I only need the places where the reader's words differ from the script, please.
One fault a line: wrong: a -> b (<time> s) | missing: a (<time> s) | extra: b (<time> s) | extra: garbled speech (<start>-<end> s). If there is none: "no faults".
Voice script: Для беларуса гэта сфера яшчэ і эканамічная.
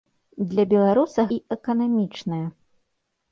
missing: гэта сфера яшчэ (1.3 s)